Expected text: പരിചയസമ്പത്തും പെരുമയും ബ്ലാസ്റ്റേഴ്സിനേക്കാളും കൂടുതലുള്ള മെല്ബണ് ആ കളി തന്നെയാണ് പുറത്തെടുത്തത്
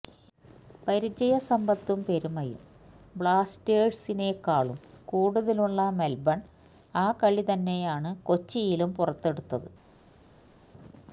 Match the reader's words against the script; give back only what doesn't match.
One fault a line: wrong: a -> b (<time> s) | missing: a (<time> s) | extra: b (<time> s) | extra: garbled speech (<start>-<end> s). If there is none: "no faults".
extra: കൊച്ചിയിലും (8.2 s)